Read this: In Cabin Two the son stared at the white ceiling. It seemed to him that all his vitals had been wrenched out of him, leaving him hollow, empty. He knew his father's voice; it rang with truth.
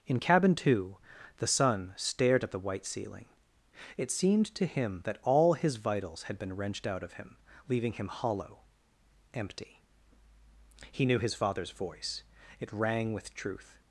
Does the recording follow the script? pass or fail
pass